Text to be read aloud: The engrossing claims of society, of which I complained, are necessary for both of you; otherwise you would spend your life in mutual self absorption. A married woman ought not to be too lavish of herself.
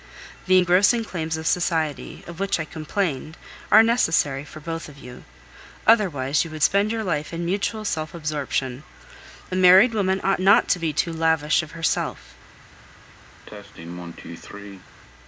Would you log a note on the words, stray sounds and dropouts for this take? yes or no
yes